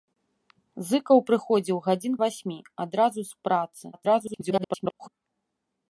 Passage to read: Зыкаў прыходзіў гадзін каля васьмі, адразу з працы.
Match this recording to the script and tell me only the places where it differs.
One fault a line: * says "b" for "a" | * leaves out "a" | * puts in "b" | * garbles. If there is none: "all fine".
* leaves out "каля"
* garbles